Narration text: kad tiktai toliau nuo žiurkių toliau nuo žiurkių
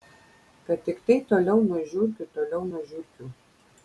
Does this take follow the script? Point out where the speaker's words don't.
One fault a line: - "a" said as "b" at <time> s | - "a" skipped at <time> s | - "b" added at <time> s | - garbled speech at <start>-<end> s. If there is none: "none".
none